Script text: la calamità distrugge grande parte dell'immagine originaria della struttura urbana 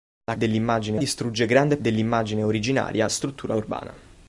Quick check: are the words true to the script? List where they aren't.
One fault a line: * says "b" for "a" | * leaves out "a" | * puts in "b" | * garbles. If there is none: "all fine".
* says "dell'immagine" for "calamità"
* leaves out "parte"
* leaves out "della"